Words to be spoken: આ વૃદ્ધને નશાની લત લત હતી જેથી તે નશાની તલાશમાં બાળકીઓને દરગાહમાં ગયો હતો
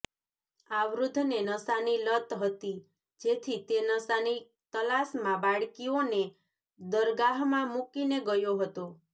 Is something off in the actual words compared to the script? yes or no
yes